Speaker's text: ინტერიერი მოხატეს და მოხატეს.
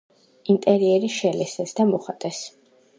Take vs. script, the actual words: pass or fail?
fail